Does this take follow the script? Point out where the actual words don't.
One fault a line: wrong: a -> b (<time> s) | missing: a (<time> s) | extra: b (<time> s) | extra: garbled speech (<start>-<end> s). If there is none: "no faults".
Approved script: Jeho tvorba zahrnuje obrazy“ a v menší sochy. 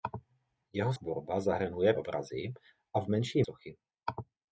no faults